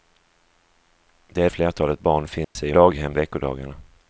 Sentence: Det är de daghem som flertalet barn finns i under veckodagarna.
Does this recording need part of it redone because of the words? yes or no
yes